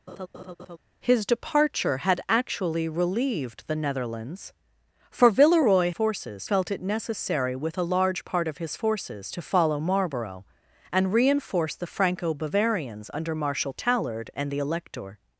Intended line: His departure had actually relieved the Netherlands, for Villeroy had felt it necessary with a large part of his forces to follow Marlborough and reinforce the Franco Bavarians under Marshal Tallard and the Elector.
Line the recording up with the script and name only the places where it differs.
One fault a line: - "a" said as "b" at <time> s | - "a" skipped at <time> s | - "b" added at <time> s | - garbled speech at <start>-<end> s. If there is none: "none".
- "had" said as "forces" at 5.9 s